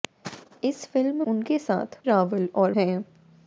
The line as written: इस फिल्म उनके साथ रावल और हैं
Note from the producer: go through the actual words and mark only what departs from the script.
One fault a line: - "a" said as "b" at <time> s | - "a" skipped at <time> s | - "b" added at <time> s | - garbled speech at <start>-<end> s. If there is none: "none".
none